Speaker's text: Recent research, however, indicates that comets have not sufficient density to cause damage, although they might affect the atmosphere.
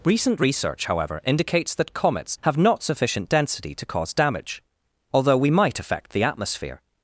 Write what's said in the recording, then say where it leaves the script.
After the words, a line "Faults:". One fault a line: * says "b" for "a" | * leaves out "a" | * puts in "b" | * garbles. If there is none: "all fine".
Recent research, however, indicates that comets have not sufficient density to cause damage, although we might affect the atmosphere.
Faults:
* says "we" for "they"